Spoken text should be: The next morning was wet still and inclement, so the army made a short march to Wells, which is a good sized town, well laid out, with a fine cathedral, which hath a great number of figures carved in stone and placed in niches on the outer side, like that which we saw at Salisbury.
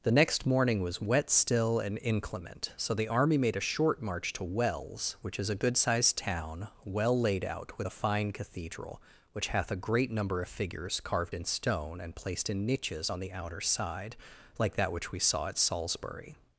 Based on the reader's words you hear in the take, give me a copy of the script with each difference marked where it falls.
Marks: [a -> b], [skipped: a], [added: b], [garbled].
The next morning was wet still and inclement, so the army made a short march to Wells, which is a good sized town, well laid out, with a fine cathedral, which hath a great number of figures carved in stone and placed in niches on the outer side, like that which we saw at Salisbury.